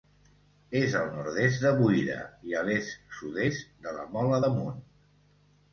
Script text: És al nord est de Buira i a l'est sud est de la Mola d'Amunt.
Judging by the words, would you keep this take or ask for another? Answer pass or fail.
pass